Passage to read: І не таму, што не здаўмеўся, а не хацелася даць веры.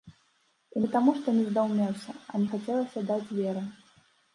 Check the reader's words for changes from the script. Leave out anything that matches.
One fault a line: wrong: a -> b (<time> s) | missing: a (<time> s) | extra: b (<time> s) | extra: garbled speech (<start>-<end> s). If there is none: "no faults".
no faults